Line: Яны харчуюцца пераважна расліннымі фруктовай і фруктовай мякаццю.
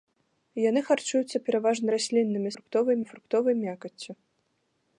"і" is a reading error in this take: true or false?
false